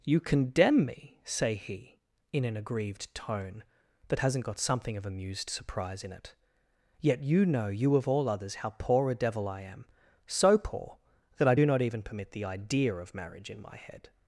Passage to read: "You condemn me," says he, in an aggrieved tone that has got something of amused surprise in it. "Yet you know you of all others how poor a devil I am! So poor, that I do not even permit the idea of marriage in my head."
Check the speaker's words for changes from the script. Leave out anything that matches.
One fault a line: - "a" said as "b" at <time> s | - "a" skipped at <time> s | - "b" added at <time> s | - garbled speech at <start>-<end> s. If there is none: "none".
- "says" said as "say" at 1.2 s
- "has" said as "hasn't" at 4.2 s